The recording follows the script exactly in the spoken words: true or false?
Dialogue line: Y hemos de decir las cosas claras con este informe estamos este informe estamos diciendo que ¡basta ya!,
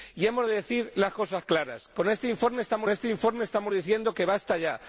true